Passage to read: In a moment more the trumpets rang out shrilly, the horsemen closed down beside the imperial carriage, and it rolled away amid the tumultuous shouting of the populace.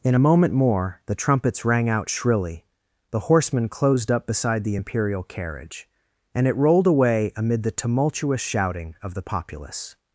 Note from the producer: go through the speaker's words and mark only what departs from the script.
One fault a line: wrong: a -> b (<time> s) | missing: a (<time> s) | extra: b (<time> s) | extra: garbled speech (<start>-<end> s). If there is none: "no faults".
wrong: down -> up (4.1 s)